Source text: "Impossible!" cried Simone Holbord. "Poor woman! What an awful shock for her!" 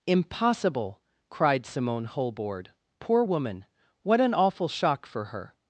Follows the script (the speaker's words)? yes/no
yes